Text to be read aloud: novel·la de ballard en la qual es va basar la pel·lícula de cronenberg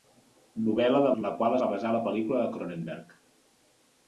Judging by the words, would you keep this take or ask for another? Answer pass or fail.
fail